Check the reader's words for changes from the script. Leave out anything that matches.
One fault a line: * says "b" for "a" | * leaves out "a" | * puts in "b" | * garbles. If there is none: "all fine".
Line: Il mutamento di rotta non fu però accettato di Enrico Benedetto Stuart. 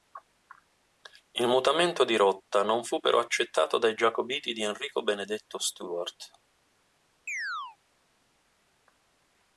* puts in "dai giacobiti"